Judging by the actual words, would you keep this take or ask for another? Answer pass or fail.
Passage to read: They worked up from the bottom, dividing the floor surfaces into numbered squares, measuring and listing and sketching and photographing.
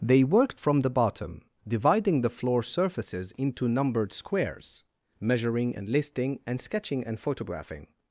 fail